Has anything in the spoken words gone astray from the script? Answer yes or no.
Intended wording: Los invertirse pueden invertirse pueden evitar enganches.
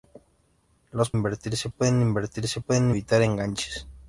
no